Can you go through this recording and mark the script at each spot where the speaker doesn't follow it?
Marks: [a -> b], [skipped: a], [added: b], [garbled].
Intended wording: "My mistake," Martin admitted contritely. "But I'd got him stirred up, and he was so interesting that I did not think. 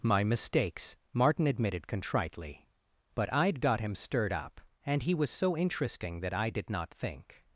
"My [mistake," -> mistakes] Martin admitted contritely. "But I'd got him stirred up, and he was so interesting that I did not think.